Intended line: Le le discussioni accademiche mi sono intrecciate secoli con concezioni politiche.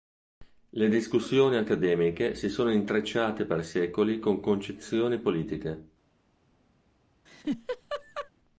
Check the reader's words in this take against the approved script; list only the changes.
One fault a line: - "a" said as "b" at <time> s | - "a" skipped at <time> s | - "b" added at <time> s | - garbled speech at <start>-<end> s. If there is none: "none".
- "le" skipped at 0.9 s
- "mi" said as "si" at 2.3 s
- "per" added at 3.5 s